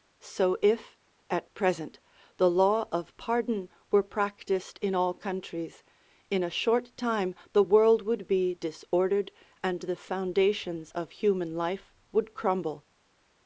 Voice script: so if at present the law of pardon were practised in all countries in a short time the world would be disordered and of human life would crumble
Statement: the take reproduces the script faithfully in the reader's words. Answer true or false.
false